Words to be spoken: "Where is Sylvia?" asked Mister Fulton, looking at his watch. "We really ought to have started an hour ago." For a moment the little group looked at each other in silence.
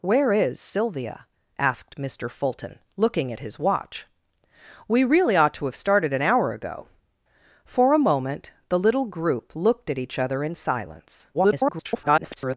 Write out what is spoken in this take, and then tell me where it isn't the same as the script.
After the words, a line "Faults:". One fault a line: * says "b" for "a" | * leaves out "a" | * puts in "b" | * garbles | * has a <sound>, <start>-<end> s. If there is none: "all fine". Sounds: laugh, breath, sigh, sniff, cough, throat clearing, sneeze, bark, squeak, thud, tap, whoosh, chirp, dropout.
"Where is Sylvia?" asked Mister Fulton, looking at his watch. "We really ought to have started an hour ago." For a moment the little group looked at each other in silence. [garbled]
Faults:
* garbles